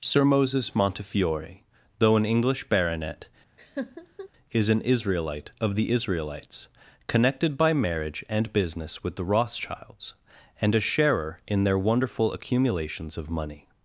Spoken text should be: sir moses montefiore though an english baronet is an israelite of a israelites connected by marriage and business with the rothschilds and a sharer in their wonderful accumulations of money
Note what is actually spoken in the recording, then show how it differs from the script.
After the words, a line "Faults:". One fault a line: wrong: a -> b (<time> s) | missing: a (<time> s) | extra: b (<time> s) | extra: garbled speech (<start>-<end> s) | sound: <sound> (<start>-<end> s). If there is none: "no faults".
sir moses montefiore though an english baronet is an israelite of the israelites connected by marriage and business with the rothschilds and a sharer in their wonderful accumulations of money
Faults:
sound: laugh (3.6-4.3 s)
wrong: a -> the (5.8 s)